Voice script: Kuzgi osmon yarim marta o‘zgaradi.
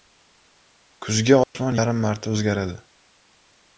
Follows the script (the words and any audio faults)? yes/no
no